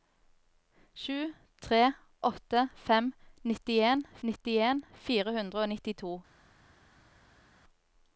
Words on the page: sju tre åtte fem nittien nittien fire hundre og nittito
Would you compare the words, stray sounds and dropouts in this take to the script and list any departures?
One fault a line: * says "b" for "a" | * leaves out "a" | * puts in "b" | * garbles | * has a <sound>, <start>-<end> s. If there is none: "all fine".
all fine